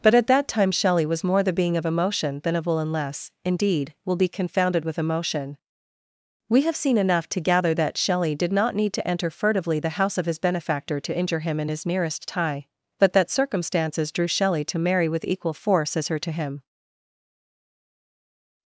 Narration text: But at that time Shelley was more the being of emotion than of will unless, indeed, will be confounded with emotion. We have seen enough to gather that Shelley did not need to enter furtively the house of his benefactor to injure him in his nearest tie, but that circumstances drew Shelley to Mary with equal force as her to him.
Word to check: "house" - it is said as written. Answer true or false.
true